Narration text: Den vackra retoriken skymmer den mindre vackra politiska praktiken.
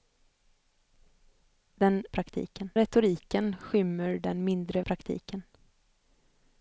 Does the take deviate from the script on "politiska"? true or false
true